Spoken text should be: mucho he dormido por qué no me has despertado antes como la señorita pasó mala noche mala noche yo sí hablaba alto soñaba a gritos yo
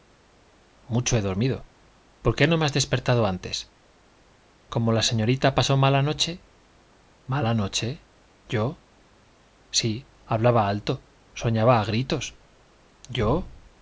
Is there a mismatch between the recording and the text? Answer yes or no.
no